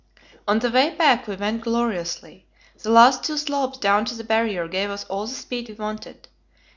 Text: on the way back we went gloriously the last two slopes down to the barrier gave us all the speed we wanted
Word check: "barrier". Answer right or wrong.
right